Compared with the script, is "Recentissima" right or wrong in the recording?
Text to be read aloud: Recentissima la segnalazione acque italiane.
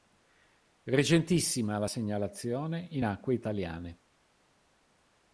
right